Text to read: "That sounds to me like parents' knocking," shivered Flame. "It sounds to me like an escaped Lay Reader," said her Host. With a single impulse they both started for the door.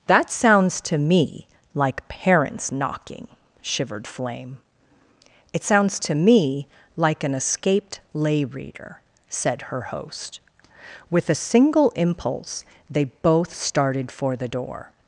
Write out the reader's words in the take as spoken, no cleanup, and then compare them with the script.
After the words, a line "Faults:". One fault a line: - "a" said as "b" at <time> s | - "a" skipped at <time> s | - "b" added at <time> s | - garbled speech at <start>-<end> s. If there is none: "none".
"That sounds to me like parents' knocking," shivered Flame. "It sounds to me like an escaped Lay Reader," said her Host. With a single impulse they both started for the door.
Faults:
none